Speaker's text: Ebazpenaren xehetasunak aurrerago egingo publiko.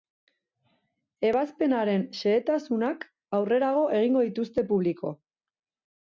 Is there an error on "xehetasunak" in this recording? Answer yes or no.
no